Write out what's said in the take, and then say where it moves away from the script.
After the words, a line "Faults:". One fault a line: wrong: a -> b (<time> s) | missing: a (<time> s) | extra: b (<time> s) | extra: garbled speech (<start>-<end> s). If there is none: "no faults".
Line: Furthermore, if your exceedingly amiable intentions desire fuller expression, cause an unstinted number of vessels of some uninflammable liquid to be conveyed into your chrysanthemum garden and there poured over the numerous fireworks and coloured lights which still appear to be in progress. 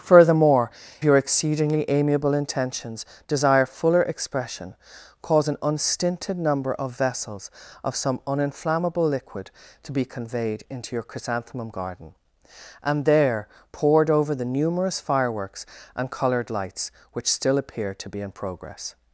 Furthermore, your exceedingly amiable intentions desire fuller expression, cause an unstinted number of vessels of some uninflammable liquid to be conveyed into your chrysanthemum garden and there poured over the numerous fireworks and coloured lights which still appear to be in progress.
Faults:
missing: if (0.7 s)